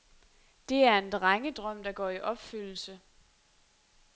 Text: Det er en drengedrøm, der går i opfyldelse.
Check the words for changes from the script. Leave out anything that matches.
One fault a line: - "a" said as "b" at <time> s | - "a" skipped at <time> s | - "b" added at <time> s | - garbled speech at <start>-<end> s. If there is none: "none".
none